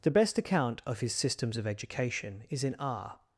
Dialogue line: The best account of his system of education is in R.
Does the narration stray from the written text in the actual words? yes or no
yes